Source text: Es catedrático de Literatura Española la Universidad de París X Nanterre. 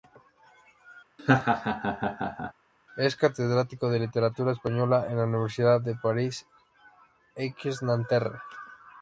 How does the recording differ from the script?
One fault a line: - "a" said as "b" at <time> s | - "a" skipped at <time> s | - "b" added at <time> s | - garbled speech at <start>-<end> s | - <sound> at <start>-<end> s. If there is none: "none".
- laugh at 1.2-2.5 s
- "en" added at 5.1 s